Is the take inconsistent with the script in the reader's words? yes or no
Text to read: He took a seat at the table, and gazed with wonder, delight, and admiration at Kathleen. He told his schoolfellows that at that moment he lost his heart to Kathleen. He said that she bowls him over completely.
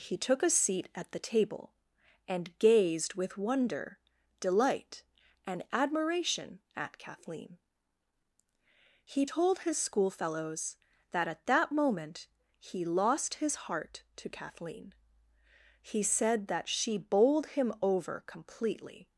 yes